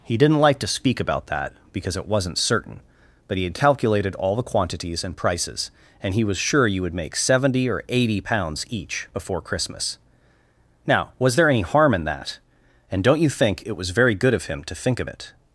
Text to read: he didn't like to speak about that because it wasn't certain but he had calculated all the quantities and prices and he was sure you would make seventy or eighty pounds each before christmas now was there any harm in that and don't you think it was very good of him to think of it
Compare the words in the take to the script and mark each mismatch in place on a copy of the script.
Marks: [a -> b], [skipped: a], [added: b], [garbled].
he didn't like to speak about that because it wasn't certain but he had calculated all the quantities and prices and he was sure you would make seventy or eighty pounds each before christmas now was there any harm in that and don't you think it was very good of him to think of it